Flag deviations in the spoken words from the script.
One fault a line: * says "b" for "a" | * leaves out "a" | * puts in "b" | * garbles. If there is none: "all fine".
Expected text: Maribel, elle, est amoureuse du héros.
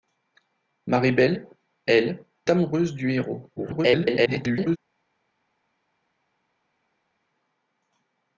* leaves out "est"
* garbles